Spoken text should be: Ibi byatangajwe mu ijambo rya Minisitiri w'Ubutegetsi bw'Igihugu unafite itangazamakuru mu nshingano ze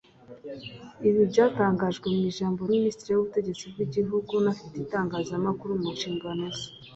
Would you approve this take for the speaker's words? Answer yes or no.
no